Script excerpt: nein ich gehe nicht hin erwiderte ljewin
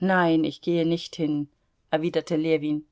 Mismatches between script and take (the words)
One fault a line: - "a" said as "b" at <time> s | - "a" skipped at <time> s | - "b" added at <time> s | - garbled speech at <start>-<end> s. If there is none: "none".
none